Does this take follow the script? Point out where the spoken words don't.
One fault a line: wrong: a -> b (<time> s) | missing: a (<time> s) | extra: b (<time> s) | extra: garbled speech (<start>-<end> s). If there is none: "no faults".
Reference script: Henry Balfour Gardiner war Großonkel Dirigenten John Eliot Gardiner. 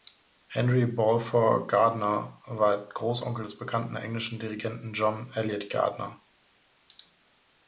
extra: des bekannten englischen (3.4 s)